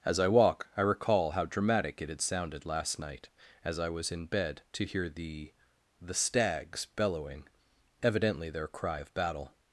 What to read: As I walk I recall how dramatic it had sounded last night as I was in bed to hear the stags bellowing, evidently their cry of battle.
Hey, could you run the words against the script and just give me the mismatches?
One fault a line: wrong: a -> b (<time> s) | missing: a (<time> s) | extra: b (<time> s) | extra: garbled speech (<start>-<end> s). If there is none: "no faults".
extra: the (6.0 s)